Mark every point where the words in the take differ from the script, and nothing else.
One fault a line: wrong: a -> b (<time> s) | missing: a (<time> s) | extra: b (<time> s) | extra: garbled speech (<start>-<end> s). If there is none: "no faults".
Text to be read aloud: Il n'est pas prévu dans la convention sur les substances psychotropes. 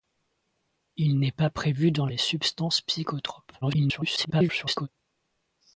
missing: la convention sur (2.1 s)
extra: garbled speech (3.6-4.9 s)